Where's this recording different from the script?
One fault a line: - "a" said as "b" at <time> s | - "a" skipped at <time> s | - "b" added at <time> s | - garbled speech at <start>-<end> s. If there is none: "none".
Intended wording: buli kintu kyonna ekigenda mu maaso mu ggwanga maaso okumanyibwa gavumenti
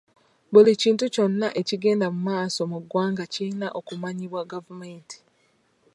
- "maaso" said as "kirina" at 3.3 s